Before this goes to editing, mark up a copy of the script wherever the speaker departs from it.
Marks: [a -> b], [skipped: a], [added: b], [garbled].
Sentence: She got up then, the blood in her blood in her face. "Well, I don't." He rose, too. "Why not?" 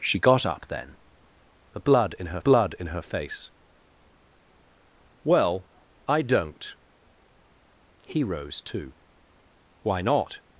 She got up then, the blood in her blood in her face. "Well, I don't." He rose, too. "Why not?"